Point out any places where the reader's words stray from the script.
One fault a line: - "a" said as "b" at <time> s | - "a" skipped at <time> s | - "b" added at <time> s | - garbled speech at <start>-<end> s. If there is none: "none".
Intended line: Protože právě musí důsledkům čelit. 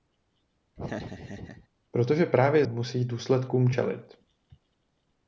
none